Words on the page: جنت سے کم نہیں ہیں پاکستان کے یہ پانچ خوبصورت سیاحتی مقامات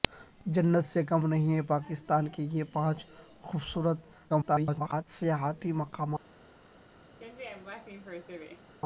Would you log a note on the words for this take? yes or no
yes